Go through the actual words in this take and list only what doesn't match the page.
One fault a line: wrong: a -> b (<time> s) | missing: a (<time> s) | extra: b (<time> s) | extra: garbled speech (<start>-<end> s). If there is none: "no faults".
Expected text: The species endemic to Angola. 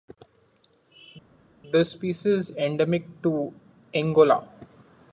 no faults